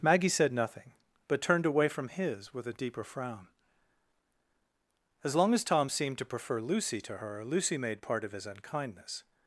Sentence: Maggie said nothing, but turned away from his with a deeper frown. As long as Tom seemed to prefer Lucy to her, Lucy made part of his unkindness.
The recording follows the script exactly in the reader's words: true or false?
true